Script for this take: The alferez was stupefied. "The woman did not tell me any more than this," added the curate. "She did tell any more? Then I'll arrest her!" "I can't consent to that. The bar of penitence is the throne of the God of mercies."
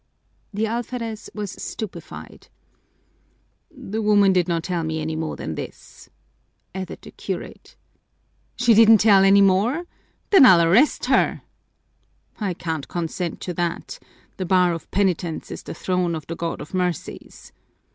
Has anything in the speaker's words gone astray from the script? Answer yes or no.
yes